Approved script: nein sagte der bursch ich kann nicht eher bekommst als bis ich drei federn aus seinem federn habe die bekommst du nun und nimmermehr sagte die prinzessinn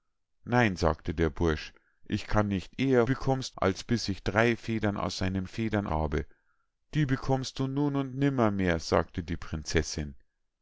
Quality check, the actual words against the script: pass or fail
pass